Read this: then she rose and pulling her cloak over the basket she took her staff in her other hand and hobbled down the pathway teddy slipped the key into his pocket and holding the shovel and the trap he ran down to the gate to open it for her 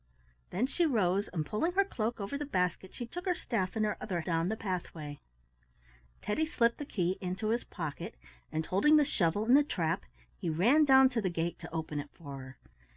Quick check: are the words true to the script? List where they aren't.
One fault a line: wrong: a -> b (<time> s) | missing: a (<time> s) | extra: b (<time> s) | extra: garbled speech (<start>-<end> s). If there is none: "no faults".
missing: hand and hobbled (4.2 s)